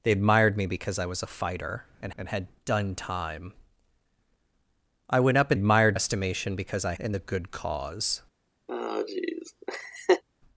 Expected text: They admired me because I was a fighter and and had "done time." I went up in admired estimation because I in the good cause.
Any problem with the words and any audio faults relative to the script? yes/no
yes